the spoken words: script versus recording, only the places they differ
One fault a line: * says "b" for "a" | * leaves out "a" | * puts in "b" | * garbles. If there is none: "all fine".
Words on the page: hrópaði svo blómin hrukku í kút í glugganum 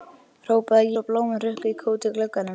all fine